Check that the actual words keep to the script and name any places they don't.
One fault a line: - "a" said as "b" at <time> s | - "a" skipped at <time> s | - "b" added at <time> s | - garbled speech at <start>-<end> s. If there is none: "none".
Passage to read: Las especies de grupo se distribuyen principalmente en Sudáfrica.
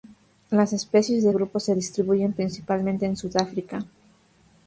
none